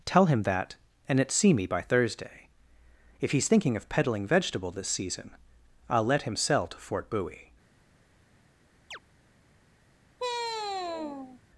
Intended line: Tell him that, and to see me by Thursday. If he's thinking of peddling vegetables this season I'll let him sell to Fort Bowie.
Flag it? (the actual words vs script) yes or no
yes